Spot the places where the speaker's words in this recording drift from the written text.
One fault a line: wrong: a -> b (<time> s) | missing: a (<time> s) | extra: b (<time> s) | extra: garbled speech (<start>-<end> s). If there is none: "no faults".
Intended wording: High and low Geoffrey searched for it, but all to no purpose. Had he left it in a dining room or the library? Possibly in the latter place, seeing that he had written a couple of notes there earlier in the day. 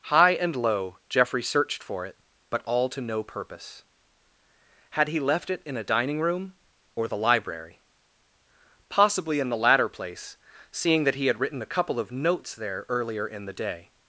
no faults